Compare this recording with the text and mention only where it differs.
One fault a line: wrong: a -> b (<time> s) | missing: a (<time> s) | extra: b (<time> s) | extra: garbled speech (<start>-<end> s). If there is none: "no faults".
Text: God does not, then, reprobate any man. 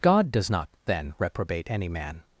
no faults